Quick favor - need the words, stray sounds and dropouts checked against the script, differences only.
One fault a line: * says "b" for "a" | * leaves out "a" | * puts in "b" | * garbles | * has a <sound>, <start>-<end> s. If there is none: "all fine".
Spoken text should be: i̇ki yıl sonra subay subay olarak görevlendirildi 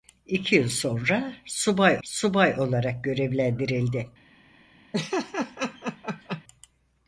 * has a laugh, 4.9-6.4 s